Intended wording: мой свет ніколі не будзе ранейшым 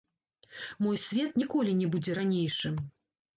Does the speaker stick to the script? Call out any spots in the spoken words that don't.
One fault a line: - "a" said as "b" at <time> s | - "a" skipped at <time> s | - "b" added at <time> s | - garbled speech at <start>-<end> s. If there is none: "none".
none